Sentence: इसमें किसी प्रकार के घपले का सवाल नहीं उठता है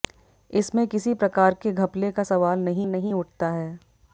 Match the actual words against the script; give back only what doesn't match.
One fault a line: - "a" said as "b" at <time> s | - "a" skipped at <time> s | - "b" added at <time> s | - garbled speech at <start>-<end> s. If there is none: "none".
- "नहीं" added at 2.9 s